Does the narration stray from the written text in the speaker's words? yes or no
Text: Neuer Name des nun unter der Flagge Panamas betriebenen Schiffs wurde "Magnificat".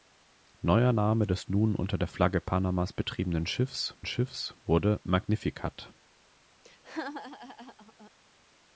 yes